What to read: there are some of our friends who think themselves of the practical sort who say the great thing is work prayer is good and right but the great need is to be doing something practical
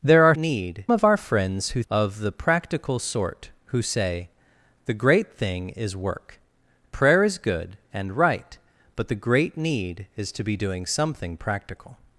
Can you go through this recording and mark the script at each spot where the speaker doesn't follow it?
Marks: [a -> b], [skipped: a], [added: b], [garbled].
there are [some -> need] of our friends who [skipped: think themselves] of the practical sort who say the great thing is work prayer is good and right but the great need is to be doing something practical